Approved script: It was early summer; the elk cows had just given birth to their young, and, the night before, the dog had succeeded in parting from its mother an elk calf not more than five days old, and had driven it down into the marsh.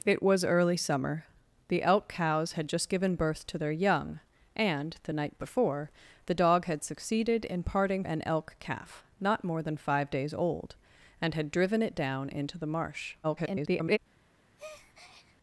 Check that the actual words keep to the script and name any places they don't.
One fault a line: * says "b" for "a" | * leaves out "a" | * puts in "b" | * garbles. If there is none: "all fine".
* leaves out "from its mother"
* garbles